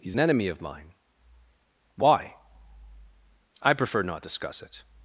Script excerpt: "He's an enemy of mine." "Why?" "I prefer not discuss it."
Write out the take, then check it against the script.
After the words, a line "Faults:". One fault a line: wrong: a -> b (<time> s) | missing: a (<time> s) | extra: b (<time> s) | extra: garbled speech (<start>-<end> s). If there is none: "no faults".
"He's an enemy of mine." "Why?" "I prefer not discuss it."
Faults:
no faults